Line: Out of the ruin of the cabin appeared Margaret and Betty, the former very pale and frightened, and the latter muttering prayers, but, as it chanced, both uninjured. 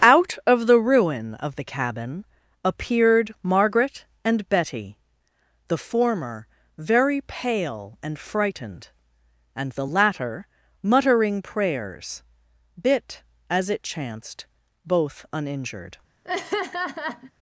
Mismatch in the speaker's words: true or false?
true